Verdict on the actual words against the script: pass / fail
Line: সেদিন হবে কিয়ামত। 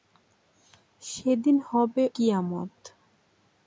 pass